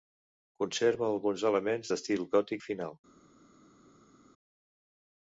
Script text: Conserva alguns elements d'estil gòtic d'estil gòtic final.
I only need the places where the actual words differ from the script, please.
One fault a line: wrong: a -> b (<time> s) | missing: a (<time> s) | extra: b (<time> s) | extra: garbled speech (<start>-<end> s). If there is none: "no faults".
missing: d'estil gòtic (2.6 s)